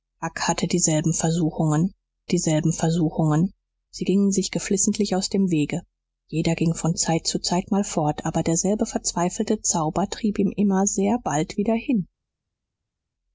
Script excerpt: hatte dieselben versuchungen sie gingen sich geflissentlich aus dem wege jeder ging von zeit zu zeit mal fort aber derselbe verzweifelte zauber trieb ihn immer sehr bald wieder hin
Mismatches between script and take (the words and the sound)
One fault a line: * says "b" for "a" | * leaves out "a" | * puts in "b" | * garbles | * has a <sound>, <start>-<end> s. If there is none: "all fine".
* puts in "dieselben versuchungen"